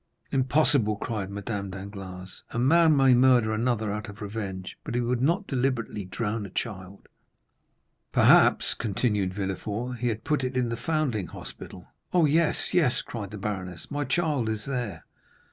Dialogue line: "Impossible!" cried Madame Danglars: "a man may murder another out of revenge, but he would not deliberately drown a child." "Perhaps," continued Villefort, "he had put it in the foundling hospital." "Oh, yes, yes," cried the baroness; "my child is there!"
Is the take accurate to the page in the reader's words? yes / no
yes